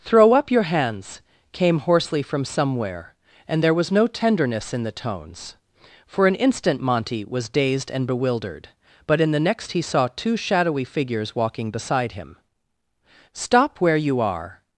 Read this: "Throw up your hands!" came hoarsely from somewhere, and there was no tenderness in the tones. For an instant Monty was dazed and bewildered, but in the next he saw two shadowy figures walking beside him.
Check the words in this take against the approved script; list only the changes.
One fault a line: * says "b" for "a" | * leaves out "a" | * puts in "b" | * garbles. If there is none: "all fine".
* puts in "Stop where you are"